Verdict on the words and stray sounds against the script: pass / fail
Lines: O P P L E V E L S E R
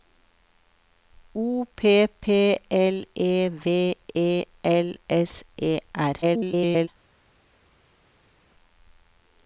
fail